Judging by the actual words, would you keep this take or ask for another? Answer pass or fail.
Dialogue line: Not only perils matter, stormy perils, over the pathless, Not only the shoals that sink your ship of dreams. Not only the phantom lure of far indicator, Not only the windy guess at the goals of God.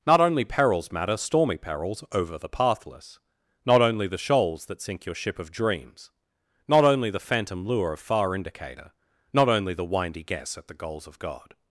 pass